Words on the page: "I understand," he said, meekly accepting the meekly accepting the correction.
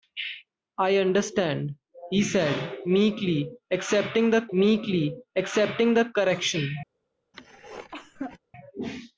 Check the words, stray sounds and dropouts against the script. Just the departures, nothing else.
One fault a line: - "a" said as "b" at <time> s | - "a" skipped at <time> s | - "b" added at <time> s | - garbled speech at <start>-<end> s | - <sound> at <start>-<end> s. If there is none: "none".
- cough at 7.3-8.4 s